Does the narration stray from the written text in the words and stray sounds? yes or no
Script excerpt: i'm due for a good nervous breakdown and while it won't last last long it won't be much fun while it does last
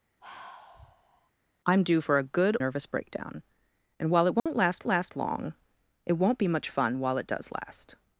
yes